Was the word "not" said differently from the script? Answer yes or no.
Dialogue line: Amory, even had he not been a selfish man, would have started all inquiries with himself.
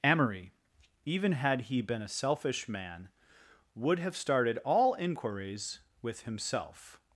yes